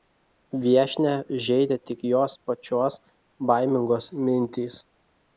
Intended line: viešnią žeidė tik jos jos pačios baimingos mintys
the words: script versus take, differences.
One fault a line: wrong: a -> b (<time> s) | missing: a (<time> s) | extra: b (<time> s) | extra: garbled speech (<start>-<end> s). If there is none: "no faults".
missing: jos (2.4 s)